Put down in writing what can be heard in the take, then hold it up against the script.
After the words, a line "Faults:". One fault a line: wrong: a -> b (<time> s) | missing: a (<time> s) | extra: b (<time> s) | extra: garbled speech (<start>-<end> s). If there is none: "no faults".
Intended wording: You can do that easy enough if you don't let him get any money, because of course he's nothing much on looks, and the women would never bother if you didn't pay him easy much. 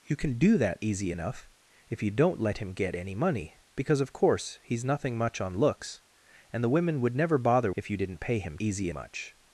You can do that easy enough if you don't let him get any money, because of course he's nothing much on looks, and the women would never bother if you didn't pay him easy much.
Faults:
no faults